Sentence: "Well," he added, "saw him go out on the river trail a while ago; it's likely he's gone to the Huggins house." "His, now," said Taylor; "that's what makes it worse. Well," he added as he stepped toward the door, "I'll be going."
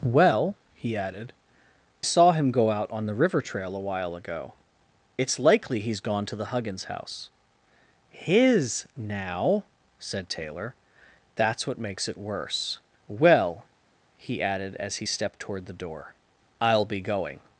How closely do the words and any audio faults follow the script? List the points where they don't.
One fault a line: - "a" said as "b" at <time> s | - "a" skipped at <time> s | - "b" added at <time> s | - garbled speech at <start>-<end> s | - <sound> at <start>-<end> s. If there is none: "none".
none